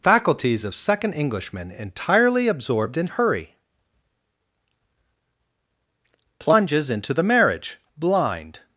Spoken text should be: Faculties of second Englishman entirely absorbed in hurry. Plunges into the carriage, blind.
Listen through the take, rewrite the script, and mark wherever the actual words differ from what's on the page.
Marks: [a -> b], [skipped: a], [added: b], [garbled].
Faculties of second Englishman entirely absorbed in hurry. Plunges into the [carriage, -> marriage] blind.